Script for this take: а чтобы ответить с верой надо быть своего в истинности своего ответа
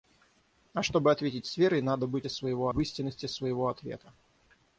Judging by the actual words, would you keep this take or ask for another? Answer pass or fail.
pass